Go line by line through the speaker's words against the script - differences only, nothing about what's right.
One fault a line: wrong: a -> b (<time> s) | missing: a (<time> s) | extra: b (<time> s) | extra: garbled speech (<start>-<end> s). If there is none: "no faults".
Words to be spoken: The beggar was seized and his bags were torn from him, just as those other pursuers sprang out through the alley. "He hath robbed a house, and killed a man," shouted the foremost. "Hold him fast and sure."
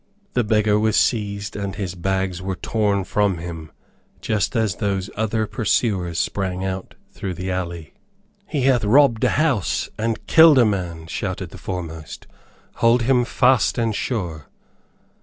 no faults